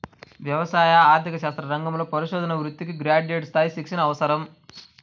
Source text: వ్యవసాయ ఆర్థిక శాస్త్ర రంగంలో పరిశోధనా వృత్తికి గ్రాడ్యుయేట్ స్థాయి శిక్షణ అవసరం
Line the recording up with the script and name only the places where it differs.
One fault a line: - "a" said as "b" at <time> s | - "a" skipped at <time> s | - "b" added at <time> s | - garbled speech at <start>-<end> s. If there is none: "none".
none